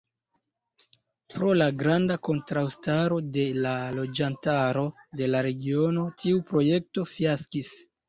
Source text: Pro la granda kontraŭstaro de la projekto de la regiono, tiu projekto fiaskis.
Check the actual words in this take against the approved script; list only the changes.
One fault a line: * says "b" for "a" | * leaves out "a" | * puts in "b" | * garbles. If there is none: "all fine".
* says "loĝantaro" for "projekto"